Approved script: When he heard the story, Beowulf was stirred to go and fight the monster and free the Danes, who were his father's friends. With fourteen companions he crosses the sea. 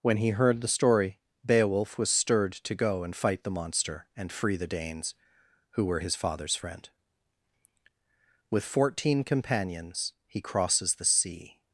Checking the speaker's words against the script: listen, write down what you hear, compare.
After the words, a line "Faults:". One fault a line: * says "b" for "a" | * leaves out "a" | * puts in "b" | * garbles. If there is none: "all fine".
When he heard the story, Beowulf was stirred to go and fight the monster and free the Danes, who were his father's friend. With fourteen companions he crosses the sea.
Faults:
* says "friend" for "friends"